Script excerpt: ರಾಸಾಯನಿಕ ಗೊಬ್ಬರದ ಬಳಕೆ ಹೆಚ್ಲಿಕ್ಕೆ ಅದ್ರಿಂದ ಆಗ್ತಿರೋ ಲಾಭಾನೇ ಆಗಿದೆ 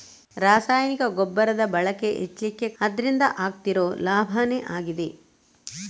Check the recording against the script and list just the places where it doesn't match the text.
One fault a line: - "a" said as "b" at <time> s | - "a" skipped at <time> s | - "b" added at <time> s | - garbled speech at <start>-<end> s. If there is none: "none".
none